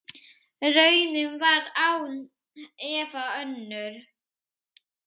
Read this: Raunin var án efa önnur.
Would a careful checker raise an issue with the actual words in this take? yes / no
no